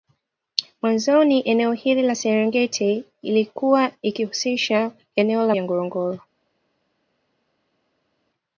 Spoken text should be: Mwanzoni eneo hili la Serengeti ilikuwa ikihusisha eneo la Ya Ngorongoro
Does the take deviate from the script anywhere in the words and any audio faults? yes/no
no